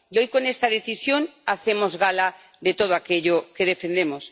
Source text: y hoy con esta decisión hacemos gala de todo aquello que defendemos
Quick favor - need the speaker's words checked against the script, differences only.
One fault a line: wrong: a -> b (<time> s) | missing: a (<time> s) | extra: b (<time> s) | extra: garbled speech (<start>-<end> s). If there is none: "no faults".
no faults